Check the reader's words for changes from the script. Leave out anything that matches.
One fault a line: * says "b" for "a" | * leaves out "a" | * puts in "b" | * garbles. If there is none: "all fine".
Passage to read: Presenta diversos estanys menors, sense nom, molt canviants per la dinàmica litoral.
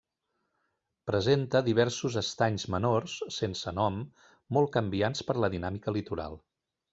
all fine